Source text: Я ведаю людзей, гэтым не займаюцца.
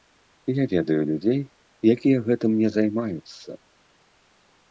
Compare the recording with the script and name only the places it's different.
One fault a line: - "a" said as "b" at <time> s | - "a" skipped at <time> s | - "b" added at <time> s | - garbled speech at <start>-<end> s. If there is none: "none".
- "якія" added at 1.9 s